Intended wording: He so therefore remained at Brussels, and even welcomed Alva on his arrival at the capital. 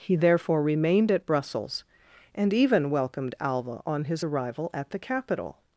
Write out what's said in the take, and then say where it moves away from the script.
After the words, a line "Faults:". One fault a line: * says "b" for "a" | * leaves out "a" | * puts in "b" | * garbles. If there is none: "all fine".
He therefore remained at Brussels, and even welcomed Alva on his arrival at the capital.
Faults:
* leaves out "so"